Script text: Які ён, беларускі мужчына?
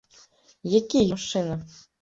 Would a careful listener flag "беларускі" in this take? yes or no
yes